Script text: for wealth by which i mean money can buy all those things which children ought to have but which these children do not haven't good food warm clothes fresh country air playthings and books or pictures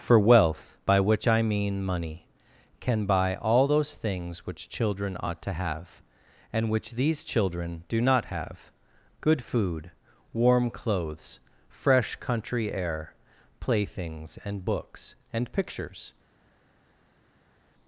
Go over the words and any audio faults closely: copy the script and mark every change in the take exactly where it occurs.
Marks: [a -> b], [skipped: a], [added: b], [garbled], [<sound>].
for wealth by which i mean money can buy all those things which children ought to have [but -> and] which these children do not [haven't -> have] good food warm clothes fresh country air playthings and books [or -> and] pictures